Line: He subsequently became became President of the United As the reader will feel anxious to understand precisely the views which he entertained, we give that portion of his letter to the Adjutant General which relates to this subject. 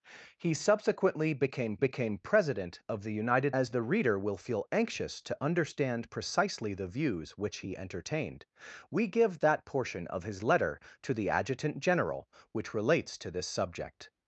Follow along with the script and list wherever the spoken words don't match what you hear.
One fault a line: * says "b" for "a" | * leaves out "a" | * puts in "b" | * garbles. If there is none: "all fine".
all fine